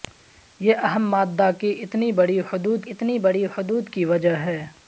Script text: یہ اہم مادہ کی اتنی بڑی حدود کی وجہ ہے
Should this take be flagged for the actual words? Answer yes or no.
yes